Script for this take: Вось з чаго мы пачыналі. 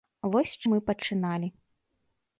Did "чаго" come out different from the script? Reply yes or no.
yes